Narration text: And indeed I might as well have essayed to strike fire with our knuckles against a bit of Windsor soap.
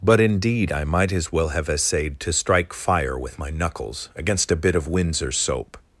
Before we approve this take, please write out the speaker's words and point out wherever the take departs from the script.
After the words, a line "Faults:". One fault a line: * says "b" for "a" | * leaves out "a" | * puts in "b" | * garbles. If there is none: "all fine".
But indeed I might as well have essayed to strike fire with my knuckles against a bit of Windsor soap.
Faults:
* says "But" for "And"
* says "my" for "our"